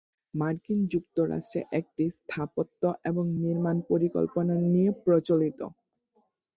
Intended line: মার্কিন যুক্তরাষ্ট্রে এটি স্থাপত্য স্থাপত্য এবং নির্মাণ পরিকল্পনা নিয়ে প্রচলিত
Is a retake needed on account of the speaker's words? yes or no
yes